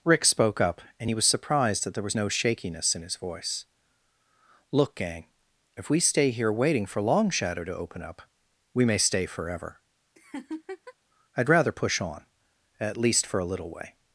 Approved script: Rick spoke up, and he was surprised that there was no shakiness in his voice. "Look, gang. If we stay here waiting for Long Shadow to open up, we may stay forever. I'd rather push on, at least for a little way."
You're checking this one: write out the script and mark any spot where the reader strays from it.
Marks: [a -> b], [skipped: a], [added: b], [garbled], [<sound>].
Rick spoke up, and he was surprised that there was no shakiness in his voice. "Look, gang. If we stay here waiting for Long Shadow to open up, we may stay forever. [laugh] I'd rather push on, at least for a little way."